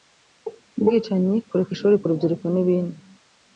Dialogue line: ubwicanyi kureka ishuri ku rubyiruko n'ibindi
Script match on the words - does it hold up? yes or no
yes